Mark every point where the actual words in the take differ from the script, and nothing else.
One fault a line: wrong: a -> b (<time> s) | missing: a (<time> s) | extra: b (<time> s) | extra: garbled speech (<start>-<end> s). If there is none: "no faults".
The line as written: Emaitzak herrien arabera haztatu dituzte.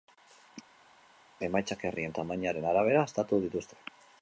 extra: tamainaren (2.2 s)